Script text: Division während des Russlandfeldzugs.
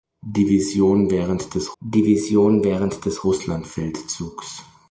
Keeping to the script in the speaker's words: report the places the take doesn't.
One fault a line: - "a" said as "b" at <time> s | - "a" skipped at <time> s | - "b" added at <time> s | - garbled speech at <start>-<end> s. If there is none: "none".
- "division während des" added at 1.8 s